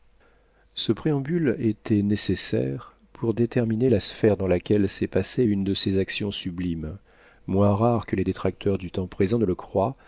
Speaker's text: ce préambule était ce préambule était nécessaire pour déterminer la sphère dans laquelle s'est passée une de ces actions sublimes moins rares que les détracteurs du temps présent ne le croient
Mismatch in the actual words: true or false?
true